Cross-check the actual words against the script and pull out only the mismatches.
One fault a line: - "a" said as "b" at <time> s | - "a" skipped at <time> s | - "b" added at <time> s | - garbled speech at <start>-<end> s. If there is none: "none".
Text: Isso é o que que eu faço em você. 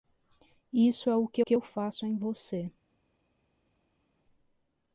none